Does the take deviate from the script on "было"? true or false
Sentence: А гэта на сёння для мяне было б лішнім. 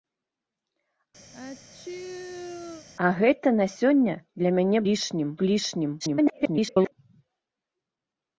true